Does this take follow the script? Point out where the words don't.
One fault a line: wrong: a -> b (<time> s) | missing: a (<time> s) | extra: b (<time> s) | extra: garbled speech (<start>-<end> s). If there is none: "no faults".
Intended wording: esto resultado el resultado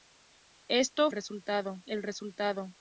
no faults